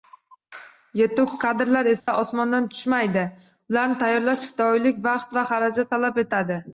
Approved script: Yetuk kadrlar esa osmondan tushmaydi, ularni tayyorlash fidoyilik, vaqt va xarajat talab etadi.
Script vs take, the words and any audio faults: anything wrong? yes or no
yes